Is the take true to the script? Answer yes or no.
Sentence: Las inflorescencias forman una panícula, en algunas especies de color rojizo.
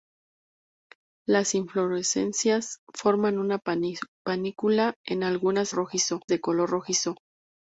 no